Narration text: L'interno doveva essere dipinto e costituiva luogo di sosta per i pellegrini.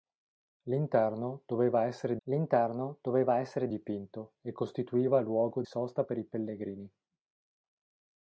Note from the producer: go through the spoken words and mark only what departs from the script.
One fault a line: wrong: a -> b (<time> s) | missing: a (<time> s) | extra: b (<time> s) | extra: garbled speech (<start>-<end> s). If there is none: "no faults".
extra: l'interno doveva essere (2.2 s)
missing: di (5.6 s)